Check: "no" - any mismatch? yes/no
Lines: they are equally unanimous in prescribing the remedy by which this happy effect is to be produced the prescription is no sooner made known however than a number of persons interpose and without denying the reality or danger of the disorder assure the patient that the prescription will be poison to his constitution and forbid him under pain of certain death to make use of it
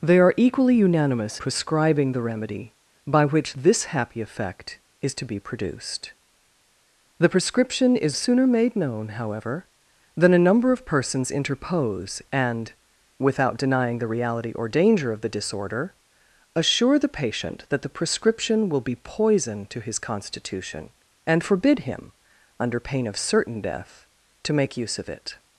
yes